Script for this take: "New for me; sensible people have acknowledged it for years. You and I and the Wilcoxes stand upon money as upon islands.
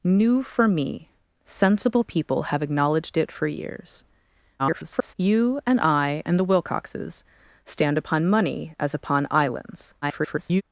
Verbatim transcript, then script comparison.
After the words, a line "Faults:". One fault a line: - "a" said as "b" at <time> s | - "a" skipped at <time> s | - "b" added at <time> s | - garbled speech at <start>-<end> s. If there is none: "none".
"New for me; sensible people have acknowledged it for years. [garbled] You and I and the Wilcoxes stand upon money as upon islands. [garbled]
Faults:
- garbled speech at 4.6-5.1 s
- garbled speech at 10.0-10.6 s